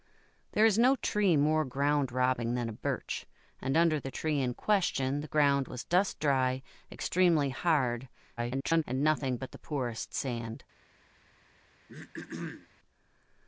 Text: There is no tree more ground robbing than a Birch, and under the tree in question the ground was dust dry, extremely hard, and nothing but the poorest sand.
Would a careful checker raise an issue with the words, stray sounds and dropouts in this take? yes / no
yes